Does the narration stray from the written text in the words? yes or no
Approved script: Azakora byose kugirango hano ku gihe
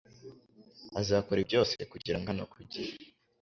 no